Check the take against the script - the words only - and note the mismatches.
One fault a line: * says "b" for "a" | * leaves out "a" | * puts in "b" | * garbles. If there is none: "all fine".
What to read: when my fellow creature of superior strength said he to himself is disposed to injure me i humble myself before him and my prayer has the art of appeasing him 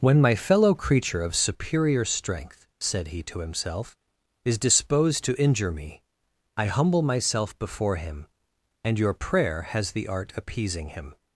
* says "your" for "my"
* leaves out "of"